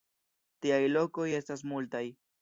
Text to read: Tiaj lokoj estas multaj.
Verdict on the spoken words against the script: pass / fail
pass